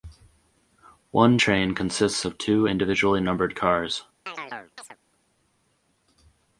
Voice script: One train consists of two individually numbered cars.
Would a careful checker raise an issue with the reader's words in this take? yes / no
no